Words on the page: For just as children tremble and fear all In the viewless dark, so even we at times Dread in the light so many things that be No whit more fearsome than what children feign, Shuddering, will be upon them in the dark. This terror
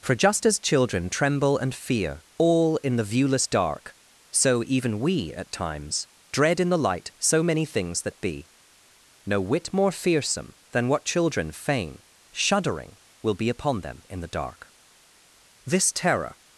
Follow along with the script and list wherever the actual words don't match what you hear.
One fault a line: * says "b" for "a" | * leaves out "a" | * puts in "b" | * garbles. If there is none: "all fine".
all fine